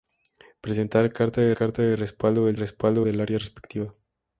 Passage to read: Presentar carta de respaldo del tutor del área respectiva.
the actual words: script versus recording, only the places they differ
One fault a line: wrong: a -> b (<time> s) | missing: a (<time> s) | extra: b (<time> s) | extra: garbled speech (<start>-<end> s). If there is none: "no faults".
extra: carta de (1.5 s)
wrong: tutor -> respaldo (2.5 s)